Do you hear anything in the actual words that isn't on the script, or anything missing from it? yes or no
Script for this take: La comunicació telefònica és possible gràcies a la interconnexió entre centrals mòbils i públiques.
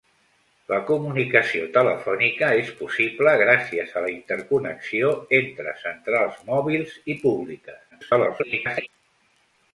yes